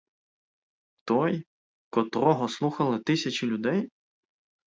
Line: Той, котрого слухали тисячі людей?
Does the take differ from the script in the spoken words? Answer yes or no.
no